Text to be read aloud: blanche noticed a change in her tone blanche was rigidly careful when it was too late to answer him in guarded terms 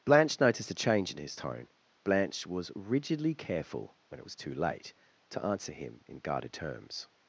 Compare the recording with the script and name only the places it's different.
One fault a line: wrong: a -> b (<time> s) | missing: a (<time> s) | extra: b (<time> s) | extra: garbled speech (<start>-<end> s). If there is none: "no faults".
wrong: her -> his (1.2 s)